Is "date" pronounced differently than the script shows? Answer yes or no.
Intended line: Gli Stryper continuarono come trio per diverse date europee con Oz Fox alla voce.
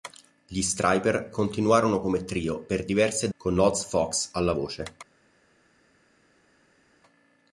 yes